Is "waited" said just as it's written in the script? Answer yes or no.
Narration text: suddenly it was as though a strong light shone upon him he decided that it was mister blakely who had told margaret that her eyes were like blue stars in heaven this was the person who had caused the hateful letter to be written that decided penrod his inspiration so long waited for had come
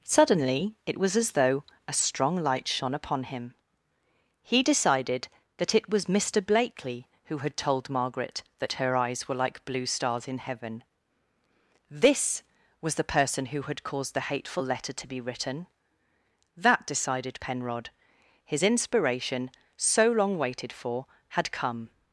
yes